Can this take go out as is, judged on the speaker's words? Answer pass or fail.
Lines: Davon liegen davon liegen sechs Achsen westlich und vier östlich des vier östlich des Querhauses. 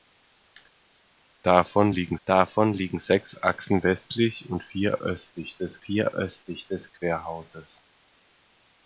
pass